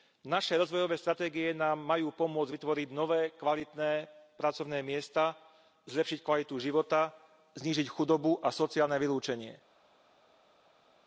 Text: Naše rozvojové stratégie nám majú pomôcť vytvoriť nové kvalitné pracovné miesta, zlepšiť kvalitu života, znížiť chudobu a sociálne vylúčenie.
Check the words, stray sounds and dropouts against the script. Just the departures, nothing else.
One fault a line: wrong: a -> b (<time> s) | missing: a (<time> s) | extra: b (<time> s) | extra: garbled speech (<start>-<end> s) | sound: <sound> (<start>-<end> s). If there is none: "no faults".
no faults